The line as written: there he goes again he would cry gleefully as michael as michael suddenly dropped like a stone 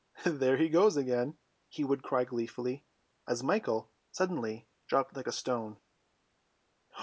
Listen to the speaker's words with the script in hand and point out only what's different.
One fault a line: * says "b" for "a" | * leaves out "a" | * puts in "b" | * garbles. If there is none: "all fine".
* leaves out "as michael"